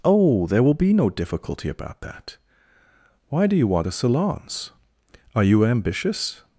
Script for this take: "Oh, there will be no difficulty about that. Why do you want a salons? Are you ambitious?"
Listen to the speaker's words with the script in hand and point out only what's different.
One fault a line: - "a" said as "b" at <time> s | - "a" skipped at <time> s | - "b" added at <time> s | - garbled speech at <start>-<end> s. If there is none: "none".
none